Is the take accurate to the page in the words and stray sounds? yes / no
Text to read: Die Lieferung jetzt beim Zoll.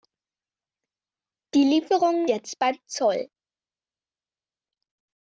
yes